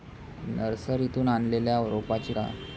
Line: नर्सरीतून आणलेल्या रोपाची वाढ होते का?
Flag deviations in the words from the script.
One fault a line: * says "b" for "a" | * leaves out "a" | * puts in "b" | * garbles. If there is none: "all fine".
* leaves out "वाढ होते"